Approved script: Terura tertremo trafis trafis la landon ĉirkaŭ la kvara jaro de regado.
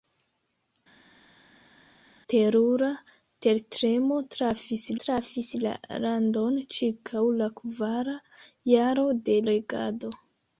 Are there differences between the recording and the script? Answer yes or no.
no